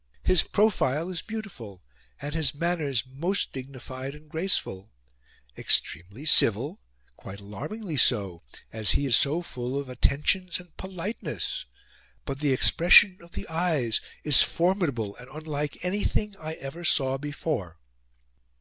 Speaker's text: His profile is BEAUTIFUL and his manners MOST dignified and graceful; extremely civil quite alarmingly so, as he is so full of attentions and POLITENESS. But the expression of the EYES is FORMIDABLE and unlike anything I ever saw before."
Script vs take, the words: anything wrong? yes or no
no